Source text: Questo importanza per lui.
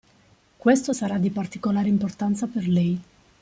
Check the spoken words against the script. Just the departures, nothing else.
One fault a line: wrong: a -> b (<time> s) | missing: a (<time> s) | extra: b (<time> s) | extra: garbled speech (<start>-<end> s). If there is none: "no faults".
extra: sarà di particolare (0.9 s)
wrong: lui -> lei (2.7 s)